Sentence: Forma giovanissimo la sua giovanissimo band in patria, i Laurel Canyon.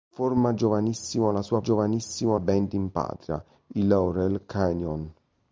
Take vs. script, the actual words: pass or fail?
pass